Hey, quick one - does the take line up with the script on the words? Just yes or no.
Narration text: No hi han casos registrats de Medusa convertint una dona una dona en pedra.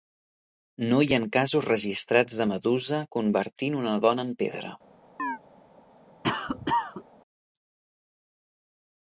no